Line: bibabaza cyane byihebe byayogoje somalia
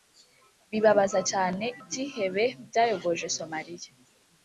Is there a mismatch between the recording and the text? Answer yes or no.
no